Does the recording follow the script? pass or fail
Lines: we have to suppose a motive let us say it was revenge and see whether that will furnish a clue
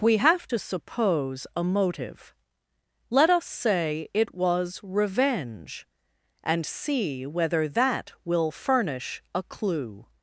pass